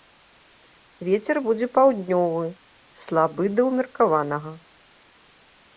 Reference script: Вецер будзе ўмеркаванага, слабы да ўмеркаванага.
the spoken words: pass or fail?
fail